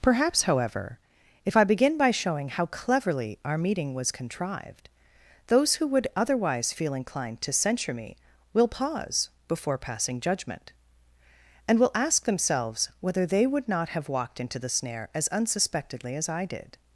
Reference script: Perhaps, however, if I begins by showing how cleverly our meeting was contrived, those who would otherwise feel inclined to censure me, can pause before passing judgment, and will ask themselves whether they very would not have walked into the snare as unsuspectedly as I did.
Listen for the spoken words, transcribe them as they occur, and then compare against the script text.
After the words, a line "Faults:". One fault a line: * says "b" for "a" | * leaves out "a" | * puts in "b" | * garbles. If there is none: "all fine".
Perhaps, however, if I begin by showing how cleverly our meeting was contrived, those who would otherwise feel inclined to censure me, will pause before passing judgment, and will ask themselves whether they would not have walked into the snare as unsuspectedly as I did.
Faults:
* says "begin" for "begins"
* says "will" for "can"
* leaves out "very"